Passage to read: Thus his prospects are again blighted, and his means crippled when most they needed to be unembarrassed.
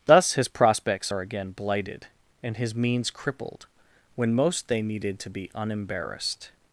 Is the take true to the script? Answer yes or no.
yes